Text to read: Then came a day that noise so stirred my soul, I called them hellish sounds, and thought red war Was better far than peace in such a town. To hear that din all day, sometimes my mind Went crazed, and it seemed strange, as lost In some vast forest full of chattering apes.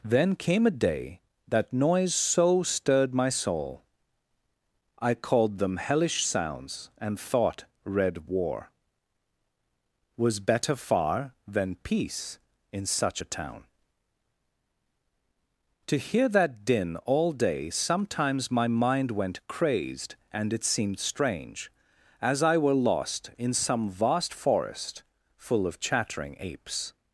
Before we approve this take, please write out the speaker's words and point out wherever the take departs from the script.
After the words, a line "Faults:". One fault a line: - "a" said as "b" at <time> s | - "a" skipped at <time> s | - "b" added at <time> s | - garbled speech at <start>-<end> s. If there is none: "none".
Then came a day that noise so stirred my soul, I called them hellish sounds, and thought red war Was better far than peace in such a town. To hear that din all day, sometimes my mind Went crazed, and it seemed strange, as I were lost In some vast forest full of chattering apes.
Faults:
- "I were" added at 22.4 s